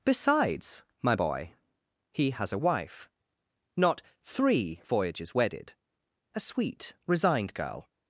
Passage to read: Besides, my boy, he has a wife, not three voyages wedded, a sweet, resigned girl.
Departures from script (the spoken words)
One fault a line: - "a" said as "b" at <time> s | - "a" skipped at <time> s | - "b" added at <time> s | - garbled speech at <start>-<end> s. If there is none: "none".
none